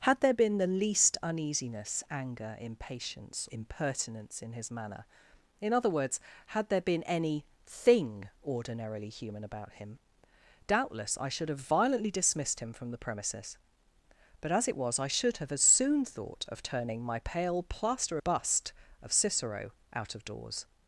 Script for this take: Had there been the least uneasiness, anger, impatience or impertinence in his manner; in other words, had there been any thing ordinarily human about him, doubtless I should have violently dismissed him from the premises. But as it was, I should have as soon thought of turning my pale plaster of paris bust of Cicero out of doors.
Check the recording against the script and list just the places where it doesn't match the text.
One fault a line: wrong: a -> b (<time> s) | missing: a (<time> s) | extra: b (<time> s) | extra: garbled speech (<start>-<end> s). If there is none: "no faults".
missing: or (3.5 s)
missing: of paris (18.2 s)